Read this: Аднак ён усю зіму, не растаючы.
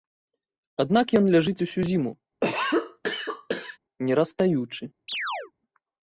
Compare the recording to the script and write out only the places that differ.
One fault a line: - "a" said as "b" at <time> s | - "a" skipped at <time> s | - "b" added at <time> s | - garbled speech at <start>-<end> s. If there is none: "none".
- "ляжыць" added at 1.4 s